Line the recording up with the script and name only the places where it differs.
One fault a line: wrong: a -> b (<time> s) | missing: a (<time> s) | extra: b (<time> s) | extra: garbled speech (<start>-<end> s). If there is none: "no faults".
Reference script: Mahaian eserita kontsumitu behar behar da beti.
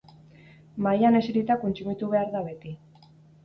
missing: behar (2.4 s)